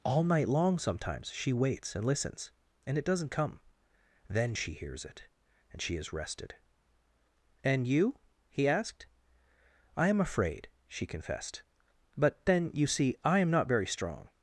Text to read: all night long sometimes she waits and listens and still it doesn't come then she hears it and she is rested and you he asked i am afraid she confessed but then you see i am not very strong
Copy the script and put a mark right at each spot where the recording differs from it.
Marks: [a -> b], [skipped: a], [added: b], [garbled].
all night long sometimes she waits and listens and [skipped: still] it doesn't come then she hears it and she is rested and you he asked i am afraid she confessed but then you see i am not very strong